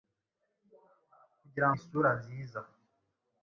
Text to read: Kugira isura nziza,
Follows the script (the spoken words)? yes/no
yes